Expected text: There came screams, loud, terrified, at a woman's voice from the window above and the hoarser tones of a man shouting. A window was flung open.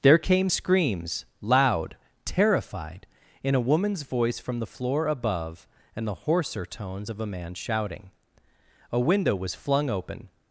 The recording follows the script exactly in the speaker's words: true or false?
false